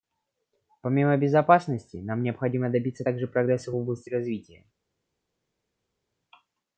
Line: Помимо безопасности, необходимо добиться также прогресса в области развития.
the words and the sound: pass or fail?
fail